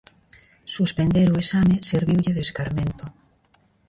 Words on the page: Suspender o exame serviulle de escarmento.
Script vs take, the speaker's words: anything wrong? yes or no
no